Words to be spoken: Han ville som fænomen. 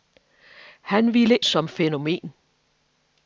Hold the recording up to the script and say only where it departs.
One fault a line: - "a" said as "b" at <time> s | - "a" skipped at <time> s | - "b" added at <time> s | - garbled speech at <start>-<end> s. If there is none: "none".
none